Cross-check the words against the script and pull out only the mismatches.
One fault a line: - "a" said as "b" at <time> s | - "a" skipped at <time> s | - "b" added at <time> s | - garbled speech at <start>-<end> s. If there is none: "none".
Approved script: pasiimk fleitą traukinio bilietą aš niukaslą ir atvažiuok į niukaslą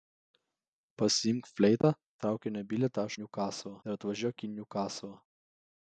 none